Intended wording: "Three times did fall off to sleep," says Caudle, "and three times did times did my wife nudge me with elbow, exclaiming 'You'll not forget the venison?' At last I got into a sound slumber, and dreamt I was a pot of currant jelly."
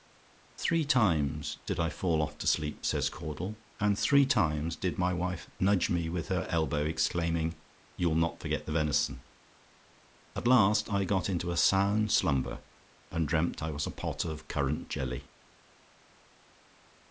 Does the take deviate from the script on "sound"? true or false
false